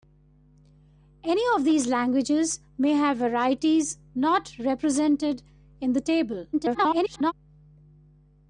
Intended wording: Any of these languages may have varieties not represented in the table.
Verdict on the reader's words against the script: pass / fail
fail